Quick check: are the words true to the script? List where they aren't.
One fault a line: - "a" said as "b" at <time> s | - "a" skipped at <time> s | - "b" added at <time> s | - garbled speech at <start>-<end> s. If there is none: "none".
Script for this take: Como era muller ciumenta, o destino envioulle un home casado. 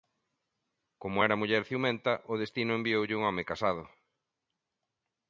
none